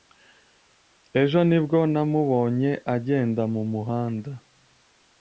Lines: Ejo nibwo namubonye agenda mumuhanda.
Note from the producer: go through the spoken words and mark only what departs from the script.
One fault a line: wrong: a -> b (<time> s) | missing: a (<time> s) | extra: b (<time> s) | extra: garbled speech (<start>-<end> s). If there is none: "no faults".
no faults